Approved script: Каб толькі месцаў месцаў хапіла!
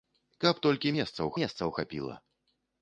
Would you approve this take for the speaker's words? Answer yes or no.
yes